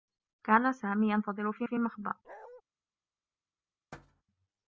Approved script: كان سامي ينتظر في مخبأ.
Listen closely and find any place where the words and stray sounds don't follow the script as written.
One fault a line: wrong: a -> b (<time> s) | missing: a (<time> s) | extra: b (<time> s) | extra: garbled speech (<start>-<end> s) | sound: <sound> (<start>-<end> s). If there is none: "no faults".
extra: في (1.6 s)
sound: bark (2.2-2.6 s)
sound: thud (3.9-4.2 s)